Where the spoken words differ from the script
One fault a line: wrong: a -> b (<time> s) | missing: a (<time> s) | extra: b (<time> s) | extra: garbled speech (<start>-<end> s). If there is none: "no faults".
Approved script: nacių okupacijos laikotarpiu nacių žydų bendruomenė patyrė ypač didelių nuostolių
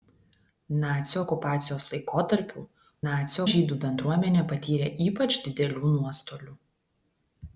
no faults